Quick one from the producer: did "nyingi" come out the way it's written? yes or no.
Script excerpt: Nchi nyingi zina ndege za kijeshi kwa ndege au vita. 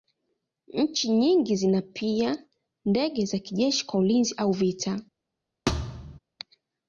yes